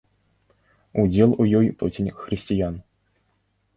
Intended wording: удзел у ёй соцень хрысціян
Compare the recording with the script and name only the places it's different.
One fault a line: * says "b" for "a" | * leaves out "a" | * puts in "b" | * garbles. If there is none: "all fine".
all fine